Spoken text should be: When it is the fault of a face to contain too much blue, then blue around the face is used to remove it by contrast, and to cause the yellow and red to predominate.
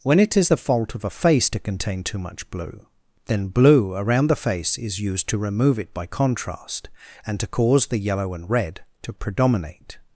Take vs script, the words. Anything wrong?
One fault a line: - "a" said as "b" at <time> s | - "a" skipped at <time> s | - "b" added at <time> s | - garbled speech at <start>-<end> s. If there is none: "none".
none